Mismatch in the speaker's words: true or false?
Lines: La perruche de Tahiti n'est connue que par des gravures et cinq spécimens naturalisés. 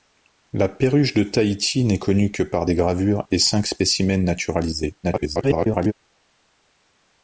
true